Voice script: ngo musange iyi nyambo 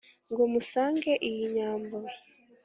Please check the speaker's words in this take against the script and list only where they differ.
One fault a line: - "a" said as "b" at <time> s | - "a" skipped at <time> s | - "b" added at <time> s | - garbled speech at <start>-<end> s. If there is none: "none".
none